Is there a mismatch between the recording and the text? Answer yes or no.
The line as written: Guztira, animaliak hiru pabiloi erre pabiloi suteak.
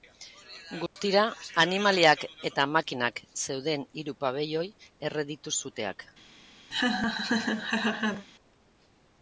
yes